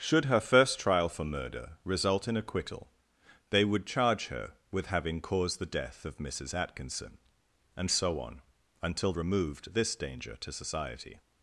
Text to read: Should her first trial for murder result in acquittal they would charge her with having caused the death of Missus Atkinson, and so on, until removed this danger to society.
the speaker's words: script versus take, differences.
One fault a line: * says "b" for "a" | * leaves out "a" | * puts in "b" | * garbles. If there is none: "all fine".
all fine